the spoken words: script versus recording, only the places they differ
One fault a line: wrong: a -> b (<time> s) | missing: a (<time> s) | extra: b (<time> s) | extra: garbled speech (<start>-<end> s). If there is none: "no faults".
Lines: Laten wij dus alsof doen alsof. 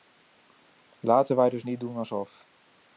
wrong: alsof -> niet (1.6 s)